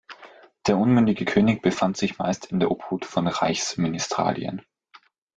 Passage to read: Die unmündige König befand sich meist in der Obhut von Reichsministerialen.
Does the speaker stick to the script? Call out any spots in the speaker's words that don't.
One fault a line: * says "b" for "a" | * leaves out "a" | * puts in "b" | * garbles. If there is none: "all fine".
* says "Der" for "Die"